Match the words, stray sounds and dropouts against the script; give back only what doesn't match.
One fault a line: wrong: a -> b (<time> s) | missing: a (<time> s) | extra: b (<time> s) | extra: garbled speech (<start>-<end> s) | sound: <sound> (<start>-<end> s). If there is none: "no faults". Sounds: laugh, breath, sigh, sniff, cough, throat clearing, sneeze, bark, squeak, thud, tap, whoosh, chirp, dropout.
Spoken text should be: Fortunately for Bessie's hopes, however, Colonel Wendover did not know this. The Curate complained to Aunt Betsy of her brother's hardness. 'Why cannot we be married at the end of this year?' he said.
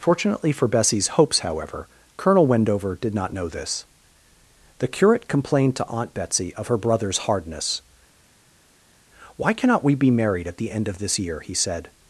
no faults